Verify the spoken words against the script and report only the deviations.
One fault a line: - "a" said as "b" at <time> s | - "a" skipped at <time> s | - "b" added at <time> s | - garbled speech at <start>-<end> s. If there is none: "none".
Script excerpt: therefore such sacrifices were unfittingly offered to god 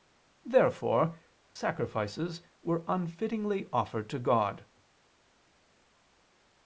- "such" skipped at 1.2 s